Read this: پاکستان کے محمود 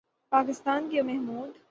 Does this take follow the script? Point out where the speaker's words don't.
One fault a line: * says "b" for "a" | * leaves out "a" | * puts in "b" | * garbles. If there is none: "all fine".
all fine